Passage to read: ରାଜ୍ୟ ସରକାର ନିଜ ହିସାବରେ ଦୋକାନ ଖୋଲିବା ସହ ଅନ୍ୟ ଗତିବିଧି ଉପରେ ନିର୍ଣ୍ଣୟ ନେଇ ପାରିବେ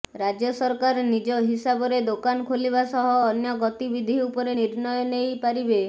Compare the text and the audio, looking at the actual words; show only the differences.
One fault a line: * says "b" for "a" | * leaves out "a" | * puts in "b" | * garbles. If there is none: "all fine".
all fine